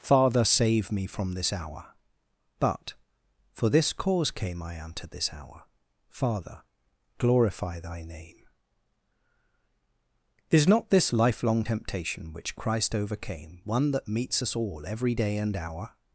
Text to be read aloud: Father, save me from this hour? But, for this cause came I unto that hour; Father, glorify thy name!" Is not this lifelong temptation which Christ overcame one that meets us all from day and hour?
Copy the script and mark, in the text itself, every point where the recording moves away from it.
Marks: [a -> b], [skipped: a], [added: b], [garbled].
Father, save me from this hour? But, for this cause came I unto [that -> this] hour; Father, glorify thy name!" Is not this lifelong temptation which Christ overcame one that meets us all [from -> every] day and hour?